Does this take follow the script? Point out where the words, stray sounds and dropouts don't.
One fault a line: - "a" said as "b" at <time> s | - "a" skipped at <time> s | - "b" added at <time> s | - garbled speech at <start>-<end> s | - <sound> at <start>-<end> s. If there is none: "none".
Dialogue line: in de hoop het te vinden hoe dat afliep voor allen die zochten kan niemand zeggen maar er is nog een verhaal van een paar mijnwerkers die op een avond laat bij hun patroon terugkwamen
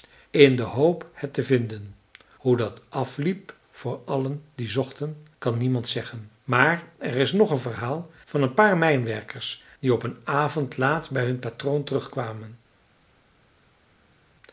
none